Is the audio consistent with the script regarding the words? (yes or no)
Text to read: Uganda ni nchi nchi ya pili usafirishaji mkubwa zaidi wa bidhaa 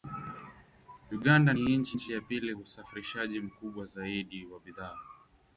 yes